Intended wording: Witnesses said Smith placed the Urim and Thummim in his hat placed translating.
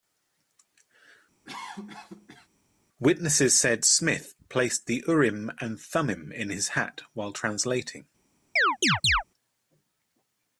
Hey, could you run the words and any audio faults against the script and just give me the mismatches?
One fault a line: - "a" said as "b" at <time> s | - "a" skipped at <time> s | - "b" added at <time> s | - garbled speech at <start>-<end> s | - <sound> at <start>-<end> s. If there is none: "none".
- cough at 1.4-2.5 s
- "placed" said as "while" at 7.1 s
- chirp at 8.6-9.2 s